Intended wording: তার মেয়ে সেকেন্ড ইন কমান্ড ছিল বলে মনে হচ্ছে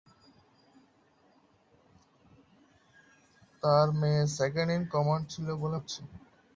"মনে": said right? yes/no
no